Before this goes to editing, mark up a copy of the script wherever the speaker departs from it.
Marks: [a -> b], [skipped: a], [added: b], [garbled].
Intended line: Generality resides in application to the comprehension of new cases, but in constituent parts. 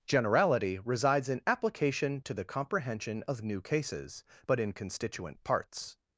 Generality resides in application to the comprehension of new cases, but in constituent parts.